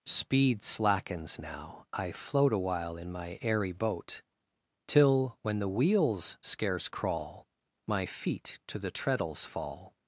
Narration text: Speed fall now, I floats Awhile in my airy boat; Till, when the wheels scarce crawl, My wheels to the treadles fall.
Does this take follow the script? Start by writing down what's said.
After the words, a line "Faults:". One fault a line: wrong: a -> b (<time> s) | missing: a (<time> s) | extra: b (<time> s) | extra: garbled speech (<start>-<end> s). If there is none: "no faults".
Speed slackens now, I float Awhile in my airy boat; Till, when the wheels scarce crawl, My feet to the treadles fall.
Faults:
wrong: fall -> slackens (0.6 s)
wrong: floats -> float (2.1 s)
wrong: wheels -> feet (8.0 s)